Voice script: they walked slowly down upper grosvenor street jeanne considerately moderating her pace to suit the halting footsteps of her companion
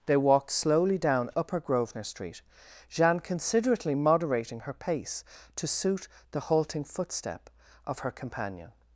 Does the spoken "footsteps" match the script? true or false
false